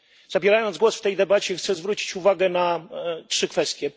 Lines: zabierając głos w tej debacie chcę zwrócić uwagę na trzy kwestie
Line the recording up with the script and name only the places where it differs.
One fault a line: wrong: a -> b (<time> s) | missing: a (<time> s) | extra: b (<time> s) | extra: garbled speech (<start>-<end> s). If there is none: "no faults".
no faults